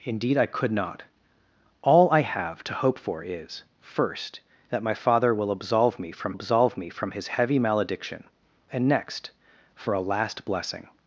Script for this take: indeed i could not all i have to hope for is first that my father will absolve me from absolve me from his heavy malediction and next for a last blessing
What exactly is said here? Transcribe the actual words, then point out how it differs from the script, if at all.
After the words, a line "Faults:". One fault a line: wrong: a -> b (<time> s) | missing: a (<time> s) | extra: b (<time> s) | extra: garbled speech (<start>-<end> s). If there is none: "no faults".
indeed i could not all i have to hope for is first that my father will absolve me from absolve me from his heavy malediction and next for a last blessing
Faults:
no faults